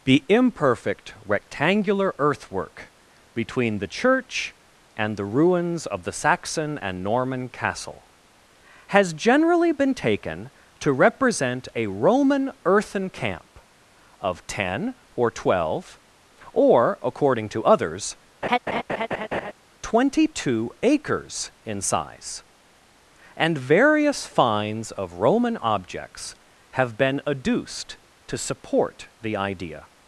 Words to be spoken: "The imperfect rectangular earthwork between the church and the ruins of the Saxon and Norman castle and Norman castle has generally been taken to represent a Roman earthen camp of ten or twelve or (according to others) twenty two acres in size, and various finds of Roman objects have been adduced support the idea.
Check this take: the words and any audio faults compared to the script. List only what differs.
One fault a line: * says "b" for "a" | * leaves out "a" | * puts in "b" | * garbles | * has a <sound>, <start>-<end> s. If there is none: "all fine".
* leaves out "and Norman castle"
* has a laugh, 18.4-19.5 s
* puts in "to"